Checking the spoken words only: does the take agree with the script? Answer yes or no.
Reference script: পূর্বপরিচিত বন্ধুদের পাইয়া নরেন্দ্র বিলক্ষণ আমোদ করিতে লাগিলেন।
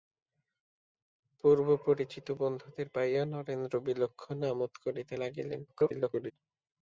no